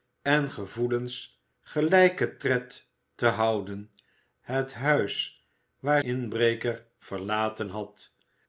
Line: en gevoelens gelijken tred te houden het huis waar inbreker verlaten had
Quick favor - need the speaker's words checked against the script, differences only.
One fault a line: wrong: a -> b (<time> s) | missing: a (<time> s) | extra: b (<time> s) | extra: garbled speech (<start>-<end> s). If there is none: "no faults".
no faults